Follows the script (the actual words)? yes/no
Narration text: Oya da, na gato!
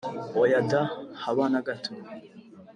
no